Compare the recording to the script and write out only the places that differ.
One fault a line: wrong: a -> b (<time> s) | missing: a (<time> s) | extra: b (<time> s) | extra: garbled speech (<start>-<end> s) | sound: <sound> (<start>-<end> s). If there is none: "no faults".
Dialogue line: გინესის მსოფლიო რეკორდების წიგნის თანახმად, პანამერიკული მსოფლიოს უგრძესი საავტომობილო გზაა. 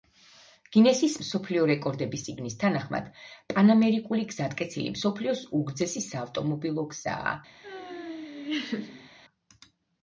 extra: გზატკეცილი (4.3 s)
sound: laugh (7.6-9.1 s)